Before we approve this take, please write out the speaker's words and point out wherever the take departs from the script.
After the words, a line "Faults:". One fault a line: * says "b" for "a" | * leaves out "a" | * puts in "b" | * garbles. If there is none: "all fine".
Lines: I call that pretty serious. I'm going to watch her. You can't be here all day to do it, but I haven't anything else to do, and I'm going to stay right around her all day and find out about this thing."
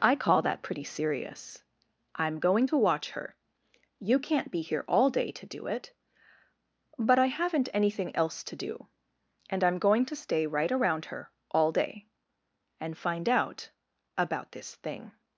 I call that pretty serious. I'm going to watch her. You can't be here all day to do it, but I haven't anything else to do, and I'm going to stay right around her all day and find out about this thing."
Faults:
all fine